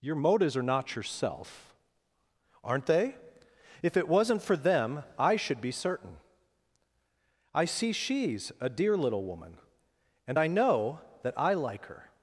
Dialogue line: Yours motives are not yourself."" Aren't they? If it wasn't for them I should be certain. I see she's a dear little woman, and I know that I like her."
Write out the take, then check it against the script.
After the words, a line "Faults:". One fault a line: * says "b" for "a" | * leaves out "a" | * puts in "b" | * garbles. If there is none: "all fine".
Your motives are not yourself."" Aren't they? If it wasn't for them I should be certain. I see she's a dear little woman, and I know that I like her."
Faults:
* says "Your" for "Yours"